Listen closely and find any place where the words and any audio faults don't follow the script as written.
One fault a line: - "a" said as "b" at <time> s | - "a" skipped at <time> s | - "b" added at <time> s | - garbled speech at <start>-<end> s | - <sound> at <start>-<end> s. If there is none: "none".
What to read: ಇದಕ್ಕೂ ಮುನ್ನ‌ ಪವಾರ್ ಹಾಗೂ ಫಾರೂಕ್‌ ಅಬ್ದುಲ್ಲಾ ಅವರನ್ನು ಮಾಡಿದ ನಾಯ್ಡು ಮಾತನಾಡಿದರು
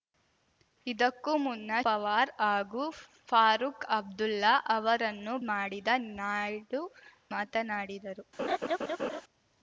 - laugh at 8.4-9.2 s